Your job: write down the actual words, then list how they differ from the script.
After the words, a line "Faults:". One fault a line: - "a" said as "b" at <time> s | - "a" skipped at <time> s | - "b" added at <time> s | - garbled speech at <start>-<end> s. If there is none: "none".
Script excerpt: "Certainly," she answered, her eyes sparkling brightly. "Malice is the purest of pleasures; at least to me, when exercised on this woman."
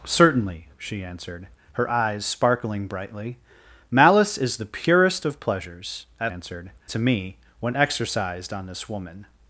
"Certainly," she answered, her eyes sparkling brightly. "Malice is the purest of pleasures; at answered to me, when exercised on this woman."
Faults:
- "least" said as "answered" at 6.3 s